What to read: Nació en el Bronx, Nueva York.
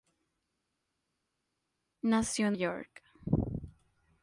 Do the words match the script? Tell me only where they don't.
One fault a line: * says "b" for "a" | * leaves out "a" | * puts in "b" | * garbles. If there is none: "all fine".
* leaves out "el Bronx Nueva"